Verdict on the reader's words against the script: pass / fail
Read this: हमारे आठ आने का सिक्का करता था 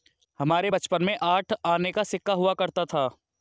fail